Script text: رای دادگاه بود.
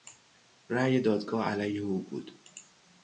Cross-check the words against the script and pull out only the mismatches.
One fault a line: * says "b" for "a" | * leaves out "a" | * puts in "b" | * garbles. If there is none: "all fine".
* puts in "علیه او"